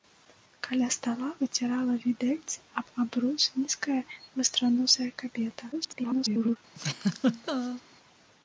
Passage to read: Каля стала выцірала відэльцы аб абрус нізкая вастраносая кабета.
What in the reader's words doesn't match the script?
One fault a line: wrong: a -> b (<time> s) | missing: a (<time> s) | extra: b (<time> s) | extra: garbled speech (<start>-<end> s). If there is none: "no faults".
extra: garbled speech (5.7-6.6 s)